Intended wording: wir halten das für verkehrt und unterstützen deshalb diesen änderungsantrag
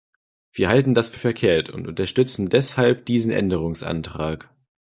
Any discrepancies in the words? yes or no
no